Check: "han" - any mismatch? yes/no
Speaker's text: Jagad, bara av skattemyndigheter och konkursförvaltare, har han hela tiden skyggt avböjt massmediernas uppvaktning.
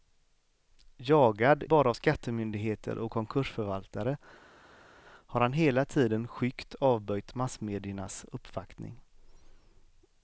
no